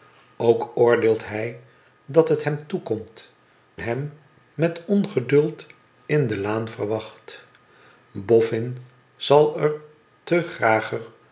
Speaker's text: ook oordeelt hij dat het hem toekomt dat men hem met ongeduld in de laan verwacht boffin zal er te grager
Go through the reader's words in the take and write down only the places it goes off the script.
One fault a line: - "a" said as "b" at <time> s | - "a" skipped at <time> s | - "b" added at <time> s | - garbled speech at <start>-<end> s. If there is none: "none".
- "dat men" skipped at 3.3 s